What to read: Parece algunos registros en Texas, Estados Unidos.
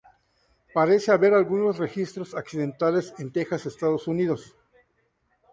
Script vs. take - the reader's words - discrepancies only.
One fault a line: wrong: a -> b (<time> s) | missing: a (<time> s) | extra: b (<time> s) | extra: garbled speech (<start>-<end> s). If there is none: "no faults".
extra: haber (1.1 s)
extra: accidentales (2.3 s)